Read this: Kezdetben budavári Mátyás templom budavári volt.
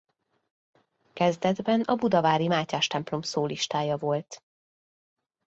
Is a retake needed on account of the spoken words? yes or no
yes